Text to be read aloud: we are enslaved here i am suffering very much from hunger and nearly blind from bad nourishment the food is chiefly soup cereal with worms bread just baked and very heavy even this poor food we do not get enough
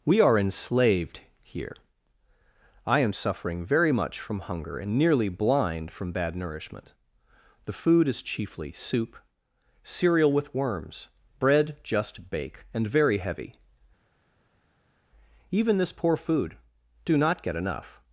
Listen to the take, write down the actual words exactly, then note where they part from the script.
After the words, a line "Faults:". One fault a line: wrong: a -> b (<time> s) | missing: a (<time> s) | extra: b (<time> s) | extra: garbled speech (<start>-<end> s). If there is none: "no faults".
we are enslaved here i am suffering very much from hunger and nearly blind from bad nourishment the food is chiefly soup cereal with worms bread just bake and very heavy even this poor food do not get enough
Faults:
wrong: baked -> bake (12.3 s)
missing: we (16.5 s)